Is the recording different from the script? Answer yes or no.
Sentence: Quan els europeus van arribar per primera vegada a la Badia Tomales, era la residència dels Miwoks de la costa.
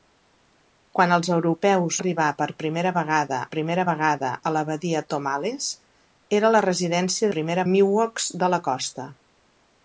yes